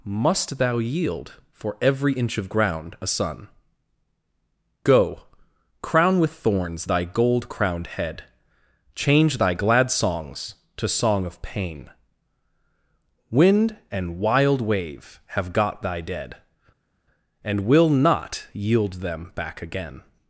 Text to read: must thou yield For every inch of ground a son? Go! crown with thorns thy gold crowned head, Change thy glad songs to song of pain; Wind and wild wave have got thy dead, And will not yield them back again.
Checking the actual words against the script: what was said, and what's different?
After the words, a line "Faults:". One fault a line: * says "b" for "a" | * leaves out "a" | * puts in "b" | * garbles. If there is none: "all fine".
must thou yield For every inch of ground a son? Go! crown with thorns thy gold crowned head, Change thy glad songs to song of pain; Wind and wild wave have got thy dead, And will not yield them back again.
Faults:
all fine